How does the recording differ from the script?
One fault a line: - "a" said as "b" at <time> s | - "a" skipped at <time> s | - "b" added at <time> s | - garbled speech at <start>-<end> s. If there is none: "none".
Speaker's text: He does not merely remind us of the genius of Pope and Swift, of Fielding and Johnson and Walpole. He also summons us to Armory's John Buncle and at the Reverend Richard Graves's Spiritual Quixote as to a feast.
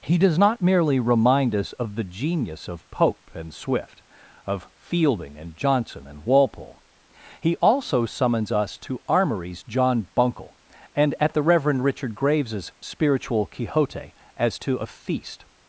none